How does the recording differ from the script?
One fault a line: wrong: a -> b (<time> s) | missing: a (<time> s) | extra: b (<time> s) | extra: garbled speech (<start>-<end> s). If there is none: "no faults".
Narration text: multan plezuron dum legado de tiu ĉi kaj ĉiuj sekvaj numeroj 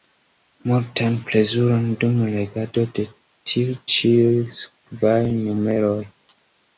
missing: ĉi kaj (3.8 s)